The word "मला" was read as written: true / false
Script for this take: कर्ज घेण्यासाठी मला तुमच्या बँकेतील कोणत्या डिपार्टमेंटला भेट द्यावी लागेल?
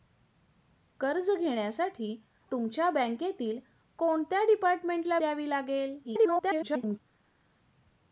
false